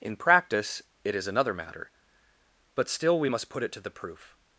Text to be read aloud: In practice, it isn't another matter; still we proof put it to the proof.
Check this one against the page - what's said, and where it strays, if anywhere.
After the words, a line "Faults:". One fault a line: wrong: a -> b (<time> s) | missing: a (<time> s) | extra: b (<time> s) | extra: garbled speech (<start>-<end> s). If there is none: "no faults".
In practice, it is another matter; but still we must put it to the proof.
Faults:
wrong: isn't -> is (1.1 s)
extra: but (2.7 s)
wrong: proof -> must (3.3 s)